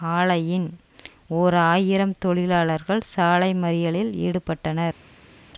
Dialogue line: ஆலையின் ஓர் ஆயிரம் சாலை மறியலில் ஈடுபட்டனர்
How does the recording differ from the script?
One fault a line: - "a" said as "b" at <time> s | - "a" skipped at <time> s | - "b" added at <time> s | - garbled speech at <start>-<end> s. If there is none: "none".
- "தொழிலாளர்கள்" added at 2.2 s